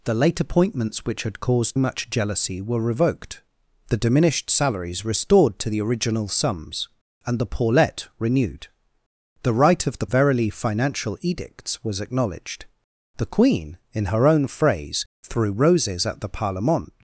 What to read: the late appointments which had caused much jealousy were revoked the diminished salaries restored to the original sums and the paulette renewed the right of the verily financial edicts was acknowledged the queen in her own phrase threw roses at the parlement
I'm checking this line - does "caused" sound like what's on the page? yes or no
yes